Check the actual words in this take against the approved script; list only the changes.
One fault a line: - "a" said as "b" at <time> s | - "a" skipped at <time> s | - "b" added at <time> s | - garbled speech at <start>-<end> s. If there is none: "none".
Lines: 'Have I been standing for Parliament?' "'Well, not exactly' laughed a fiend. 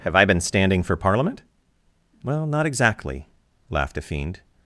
none